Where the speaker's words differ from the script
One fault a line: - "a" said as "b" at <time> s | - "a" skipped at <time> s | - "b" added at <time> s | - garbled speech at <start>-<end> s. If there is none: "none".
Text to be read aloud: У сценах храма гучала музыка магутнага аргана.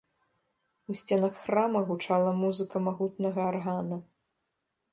none